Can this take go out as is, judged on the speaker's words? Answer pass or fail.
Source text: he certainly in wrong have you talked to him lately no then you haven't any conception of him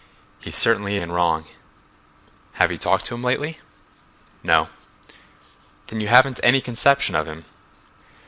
pass